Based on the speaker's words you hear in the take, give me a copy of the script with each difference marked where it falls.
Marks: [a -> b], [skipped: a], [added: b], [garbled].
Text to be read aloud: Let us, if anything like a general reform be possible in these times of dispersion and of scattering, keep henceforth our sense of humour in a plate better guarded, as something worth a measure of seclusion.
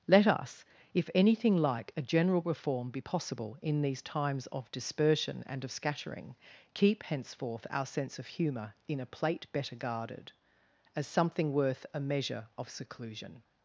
Let us, if anything like a general reform be possible in these times of dispersion and of scattering, keep henceforth our sense of humour in a plate better guarded, as something worth a measure of seclusion.